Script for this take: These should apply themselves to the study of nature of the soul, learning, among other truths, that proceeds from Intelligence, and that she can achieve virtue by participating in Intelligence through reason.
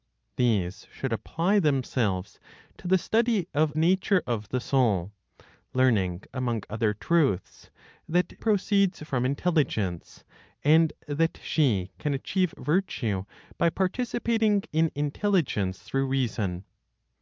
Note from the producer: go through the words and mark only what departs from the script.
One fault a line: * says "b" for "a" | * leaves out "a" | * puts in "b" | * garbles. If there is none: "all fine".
all fine